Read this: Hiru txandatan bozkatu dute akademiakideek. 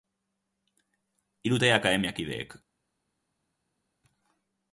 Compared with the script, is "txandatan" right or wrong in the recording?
wrong